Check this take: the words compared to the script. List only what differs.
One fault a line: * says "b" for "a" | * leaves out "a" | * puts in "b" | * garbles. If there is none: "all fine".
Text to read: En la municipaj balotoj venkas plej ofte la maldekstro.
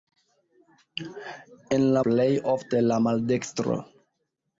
* leaves out "municipaj balotoj venkas"